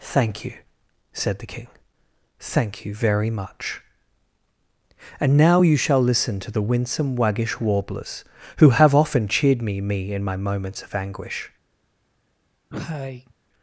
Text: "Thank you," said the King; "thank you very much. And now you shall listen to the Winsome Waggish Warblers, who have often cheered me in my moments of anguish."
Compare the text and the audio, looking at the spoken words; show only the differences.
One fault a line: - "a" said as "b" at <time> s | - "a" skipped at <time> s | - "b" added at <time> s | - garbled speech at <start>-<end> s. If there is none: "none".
- "me" added at 9.8 s